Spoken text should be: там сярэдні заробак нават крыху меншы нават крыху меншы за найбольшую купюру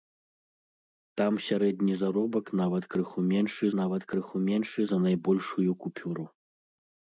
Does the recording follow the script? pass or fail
pass